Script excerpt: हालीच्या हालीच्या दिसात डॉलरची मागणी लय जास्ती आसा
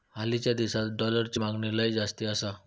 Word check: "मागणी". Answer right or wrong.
right